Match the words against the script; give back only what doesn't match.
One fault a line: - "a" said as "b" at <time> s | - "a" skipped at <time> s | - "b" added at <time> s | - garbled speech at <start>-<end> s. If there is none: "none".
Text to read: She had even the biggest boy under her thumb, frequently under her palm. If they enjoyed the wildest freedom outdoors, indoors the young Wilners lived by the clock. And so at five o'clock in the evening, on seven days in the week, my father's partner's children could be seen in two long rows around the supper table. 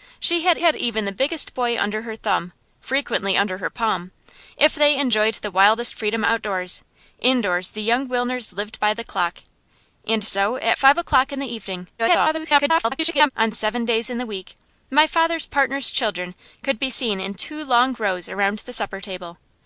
- "had" added at 0.6 s
- garbled speech at 12.0-13.3 s